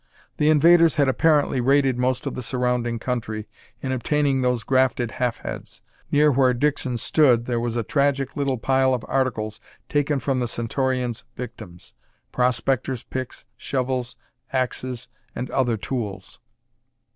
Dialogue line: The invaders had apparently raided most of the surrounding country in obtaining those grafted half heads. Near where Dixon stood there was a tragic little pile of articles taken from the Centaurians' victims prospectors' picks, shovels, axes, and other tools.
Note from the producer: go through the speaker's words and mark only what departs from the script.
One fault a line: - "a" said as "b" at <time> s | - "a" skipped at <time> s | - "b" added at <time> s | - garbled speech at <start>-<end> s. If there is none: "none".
none